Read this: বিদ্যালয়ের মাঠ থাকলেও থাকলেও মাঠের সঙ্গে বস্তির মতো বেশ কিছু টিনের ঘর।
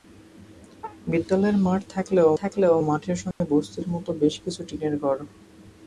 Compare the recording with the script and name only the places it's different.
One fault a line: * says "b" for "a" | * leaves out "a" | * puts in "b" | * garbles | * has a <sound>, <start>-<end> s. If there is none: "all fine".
* has a dropout, 3.3-3.4 s